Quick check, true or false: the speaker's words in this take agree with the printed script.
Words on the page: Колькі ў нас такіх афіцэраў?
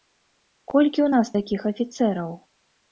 true